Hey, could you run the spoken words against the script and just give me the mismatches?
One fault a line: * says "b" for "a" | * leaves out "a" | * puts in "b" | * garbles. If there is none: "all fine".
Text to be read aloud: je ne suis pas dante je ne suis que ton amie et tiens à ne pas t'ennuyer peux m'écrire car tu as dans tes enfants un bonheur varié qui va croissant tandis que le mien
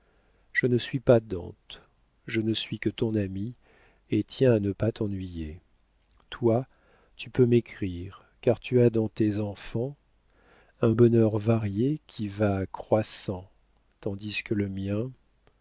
* puts in "toi tu"